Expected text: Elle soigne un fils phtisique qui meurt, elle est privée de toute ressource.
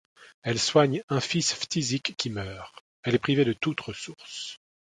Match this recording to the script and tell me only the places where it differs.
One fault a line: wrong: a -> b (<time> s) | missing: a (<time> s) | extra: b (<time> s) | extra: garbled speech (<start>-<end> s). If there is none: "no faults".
no faults